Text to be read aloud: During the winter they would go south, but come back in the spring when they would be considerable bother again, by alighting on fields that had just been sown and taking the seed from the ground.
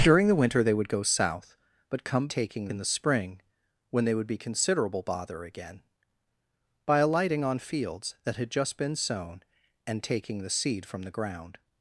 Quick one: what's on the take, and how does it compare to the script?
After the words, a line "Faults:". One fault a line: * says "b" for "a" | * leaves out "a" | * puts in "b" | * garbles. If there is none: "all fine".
During the winter they would go south, but come taking in the spring when they would be considerable bother again, by alighting on fields that had just been sown and taking the seed from the ground.
Faults:
* says "taking" for "back"